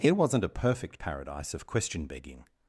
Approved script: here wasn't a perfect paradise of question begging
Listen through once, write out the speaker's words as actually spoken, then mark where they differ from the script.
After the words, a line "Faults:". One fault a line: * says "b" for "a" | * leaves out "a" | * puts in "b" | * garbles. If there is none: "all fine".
here wasn't a perfect paradise of question begging
Faults:
all fine